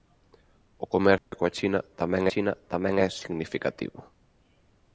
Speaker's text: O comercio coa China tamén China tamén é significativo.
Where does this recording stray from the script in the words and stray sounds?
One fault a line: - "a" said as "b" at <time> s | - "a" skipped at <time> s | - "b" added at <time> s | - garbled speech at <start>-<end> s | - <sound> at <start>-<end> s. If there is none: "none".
- dropout at 1.2-1.3 s